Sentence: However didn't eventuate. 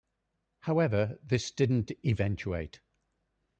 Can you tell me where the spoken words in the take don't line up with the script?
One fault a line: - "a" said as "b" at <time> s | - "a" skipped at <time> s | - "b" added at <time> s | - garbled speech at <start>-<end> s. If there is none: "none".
- "this" added at 1.2 s